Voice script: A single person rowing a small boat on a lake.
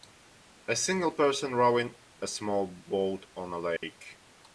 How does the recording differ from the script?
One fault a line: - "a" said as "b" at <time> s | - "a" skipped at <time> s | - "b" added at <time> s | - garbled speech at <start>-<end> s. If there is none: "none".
none